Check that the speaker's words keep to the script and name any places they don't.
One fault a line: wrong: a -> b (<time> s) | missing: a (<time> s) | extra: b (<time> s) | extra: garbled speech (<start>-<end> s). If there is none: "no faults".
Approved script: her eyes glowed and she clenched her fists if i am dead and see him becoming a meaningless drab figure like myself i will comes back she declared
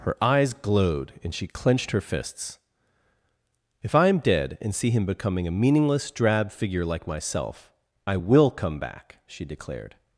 wrong: comes -> come (8.5 s)